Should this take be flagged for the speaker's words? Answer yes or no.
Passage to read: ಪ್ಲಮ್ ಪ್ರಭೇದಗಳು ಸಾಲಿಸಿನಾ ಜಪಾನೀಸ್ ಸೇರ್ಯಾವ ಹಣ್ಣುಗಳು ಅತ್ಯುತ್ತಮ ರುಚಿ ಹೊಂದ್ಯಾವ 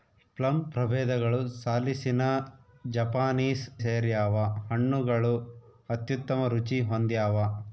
no